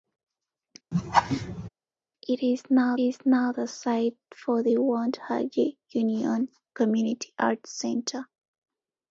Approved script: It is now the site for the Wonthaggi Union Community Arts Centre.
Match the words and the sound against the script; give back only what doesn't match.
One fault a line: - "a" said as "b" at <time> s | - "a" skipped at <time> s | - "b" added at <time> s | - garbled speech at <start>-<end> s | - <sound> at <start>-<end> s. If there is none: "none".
- laugh at 0.9-1.7 s
- "is now" added at 3.0 s